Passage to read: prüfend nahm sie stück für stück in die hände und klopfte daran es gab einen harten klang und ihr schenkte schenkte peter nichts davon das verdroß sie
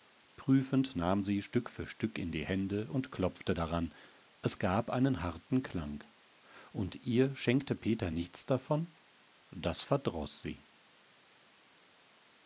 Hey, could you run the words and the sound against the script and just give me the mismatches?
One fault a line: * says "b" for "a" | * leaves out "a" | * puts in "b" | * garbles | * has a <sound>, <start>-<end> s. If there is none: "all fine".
* leaves out "schenkte"